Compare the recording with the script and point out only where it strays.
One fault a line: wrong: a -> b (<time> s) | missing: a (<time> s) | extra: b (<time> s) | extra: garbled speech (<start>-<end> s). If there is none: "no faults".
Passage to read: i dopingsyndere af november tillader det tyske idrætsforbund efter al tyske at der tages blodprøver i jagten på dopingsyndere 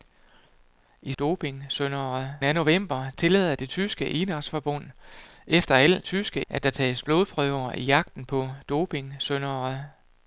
no faults